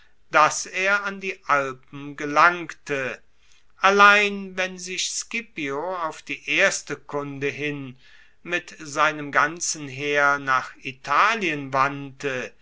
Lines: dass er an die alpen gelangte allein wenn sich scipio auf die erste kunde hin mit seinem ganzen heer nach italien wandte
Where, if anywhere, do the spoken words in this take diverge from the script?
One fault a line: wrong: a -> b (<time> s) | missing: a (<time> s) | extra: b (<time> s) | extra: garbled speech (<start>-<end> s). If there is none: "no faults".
no faults